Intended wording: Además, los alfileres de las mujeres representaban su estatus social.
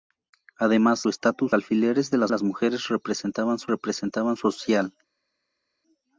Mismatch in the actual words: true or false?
true